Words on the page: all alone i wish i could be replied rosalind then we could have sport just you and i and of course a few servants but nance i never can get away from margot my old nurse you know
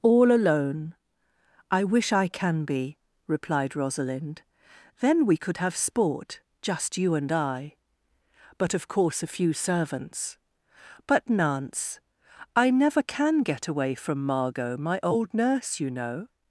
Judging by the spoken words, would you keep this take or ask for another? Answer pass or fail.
fail